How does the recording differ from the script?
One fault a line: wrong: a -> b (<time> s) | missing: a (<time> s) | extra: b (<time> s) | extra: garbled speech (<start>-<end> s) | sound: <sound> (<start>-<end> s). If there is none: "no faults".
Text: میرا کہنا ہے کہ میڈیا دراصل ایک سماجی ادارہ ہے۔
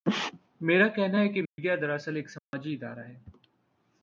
sound: dropout (1.5-1.6 s)
sound: dropout (2.4-2.5 s)